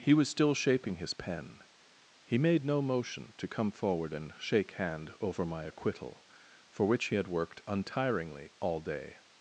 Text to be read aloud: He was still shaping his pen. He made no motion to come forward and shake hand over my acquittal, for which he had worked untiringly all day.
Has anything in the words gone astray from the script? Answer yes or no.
no